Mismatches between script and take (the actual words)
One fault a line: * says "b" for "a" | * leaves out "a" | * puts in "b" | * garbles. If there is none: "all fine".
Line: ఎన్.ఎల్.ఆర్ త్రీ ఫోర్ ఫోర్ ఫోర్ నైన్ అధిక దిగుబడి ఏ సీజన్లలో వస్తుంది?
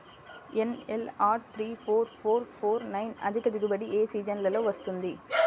all fine